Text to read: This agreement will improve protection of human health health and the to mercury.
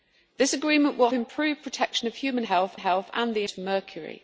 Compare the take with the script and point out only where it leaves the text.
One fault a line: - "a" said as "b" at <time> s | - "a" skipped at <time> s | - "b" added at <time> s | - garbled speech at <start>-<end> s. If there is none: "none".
none